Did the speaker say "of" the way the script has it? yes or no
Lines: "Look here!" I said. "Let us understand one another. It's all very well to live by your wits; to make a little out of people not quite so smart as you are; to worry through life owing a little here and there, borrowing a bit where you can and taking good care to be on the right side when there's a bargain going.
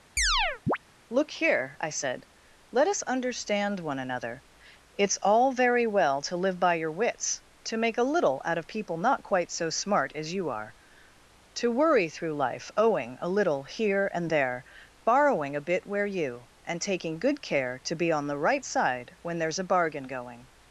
yes